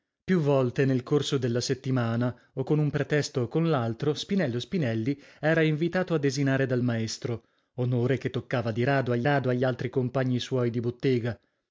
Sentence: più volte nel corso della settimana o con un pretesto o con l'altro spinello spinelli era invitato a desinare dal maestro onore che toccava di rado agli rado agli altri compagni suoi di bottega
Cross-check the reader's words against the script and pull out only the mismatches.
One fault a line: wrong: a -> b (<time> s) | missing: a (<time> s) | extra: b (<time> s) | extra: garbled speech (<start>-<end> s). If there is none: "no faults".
no faults